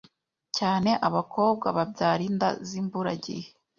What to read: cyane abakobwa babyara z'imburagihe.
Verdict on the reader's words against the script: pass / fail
fail